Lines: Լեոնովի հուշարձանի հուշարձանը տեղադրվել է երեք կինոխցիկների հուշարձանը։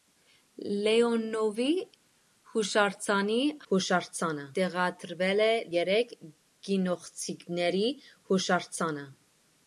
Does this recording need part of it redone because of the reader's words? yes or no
no